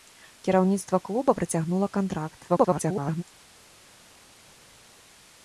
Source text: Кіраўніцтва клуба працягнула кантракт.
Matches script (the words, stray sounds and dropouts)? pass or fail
fail